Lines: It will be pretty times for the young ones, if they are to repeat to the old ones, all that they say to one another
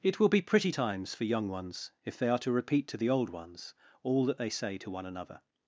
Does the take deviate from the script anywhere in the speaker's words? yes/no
yes